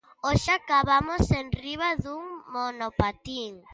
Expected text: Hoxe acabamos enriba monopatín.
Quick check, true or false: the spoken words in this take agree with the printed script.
false